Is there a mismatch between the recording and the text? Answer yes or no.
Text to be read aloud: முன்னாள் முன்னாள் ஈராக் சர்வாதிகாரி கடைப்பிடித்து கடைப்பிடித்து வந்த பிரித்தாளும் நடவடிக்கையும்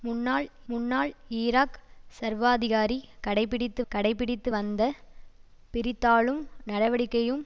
no